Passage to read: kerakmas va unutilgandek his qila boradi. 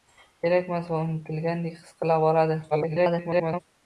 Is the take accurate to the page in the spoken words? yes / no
no